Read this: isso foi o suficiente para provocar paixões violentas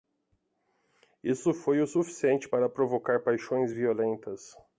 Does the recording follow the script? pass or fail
pass